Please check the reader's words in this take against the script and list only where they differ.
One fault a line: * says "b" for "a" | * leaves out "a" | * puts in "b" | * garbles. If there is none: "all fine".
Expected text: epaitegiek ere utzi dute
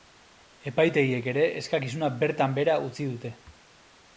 * puts in "eskakizuna bertan behera"